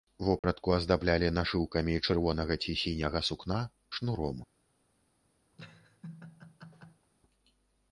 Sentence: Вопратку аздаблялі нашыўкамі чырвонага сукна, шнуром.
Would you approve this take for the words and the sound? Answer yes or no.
no